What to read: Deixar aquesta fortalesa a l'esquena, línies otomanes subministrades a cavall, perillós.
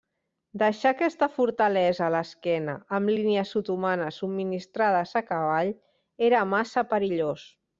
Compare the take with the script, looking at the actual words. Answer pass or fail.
fail